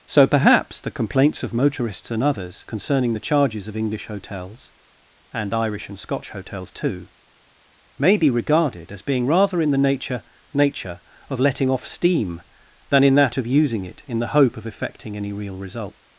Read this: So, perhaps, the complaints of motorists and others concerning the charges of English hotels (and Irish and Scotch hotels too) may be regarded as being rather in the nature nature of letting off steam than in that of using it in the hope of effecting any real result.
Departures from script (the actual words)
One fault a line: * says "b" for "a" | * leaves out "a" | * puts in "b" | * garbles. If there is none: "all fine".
all fine